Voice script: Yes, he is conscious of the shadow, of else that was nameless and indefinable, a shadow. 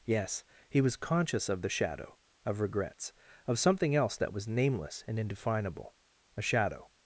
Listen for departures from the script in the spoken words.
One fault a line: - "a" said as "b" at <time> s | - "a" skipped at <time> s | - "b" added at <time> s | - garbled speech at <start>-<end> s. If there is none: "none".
- "is" said as "was" at 0.8 s
- "regrets of something" added at 2.6 s